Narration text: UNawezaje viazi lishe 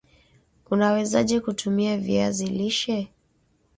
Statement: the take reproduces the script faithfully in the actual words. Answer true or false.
false